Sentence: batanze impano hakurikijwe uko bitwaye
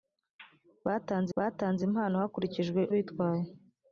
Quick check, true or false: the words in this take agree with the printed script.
false